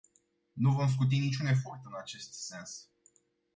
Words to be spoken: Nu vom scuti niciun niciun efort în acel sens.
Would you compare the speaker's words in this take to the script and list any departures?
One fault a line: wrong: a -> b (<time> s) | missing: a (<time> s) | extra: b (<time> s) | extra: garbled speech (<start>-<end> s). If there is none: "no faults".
missing: niciun (1.4 s)
wrong: acel -> acest (1.9 s)